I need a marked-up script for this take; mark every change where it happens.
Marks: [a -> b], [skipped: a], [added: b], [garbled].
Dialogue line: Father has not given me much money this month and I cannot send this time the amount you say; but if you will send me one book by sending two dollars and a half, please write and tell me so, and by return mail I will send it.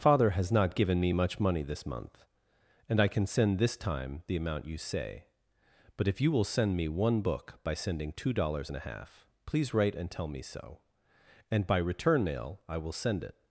Father has not given me much money this month and I [cannot -> can] send this time the amount you say; but if you will send me one book by sending two dollars and a half, please write and tell me so, and by return mail I will send it.